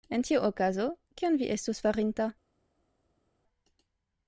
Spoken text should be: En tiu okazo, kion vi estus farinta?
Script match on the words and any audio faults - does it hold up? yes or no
yes